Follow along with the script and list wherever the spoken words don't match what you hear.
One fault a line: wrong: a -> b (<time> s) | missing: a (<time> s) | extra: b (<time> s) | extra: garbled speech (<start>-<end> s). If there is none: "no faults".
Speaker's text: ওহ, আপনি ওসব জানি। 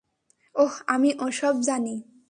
wrong: আপনি -> আমি (0.9 s)